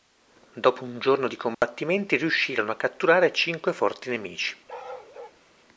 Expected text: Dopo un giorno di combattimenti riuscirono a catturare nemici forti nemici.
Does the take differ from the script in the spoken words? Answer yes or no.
yes